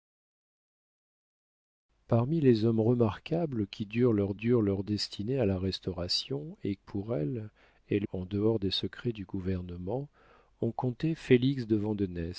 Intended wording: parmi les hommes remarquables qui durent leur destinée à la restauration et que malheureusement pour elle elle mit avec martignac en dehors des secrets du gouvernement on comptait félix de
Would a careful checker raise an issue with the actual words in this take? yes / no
yes